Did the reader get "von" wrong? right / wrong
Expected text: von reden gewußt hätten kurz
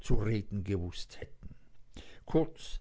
wrong